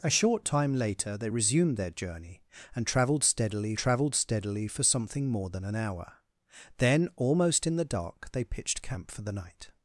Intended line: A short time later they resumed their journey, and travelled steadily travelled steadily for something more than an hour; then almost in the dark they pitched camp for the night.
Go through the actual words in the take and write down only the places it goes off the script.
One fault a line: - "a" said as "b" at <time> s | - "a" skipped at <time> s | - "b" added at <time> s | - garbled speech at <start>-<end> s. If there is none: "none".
none